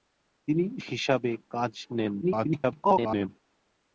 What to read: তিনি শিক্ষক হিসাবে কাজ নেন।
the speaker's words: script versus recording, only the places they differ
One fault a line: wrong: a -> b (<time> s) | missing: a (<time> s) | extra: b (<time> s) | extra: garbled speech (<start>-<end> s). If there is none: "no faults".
missing: শিক্ষক (0.7 s)
extra: garbled speech (2.2-3.3 s)